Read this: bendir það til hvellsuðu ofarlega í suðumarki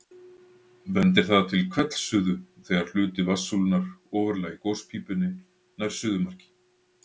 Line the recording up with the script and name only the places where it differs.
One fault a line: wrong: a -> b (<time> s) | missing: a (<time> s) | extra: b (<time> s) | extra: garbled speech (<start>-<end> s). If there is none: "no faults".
extra: þegar hluti vatnssúlunnar (2.7 s)
extra: gospípunni nær (4.7 s)